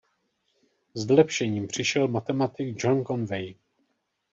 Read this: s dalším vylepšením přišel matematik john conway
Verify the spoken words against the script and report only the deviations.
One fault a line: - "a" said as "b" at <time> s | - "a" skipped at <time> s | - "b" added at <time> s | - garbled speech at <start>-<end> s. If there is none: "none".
- "dalším" skipped at 1.1 s